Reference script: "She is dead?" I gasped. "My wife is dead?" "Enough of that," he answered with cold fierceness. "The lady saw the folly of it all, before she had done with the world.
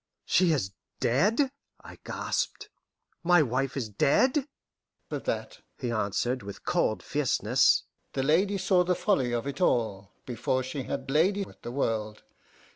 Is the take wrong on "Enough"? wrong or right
wrong